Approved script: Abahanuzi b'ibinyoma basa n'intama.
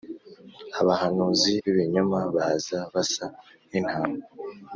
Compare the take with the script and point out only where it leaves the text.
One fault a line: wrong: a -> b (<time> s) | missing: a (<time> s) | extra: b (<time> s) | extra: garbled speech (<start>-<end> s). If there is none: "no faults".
extra: baza (2.3 s)